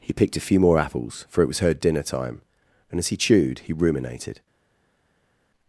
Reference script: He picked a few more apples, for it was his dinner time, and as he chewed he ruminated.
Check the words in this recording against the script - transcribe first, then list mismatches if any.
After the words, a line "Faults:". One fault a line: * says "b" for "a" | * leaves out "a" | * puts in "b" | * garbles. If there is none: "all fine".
He picked a few more apples, for it was her dinner time, and as he chewed he ruminated.
Faults:
* says "her" for "his"